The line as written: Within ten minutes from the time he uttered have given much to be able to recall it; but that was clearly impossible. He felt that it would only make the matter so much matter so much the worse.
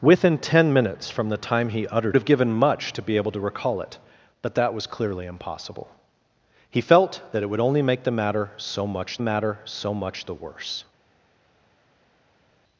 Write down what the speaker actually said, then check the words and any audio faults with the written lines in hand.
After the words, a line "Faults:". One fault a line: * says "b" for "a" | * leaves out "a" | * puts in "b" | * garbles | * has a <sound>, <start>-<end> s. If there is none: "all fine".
Within ten minutes from the time he uttered have given much to be able to recall it; but that was clearly impossible. He felt that it would only make the matter so much matter so much the worse.
Faults:
all fine